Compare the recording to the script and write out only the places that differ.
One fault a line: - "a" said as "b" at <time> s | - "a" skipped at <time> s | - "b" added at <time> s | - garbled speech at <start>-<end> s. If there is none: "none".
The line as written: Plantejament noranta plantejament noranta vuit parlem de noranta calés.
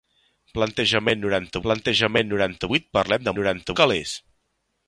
none